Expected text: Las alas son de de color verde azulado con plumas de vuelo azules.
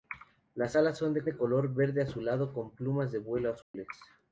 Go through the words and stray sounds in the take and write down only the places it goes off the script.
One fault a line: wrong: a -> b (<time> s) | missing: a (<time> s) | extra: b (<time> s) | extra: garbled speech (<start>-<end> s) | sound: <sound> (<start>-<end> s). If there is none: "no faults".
sound: dropout (3.6-3.7 s)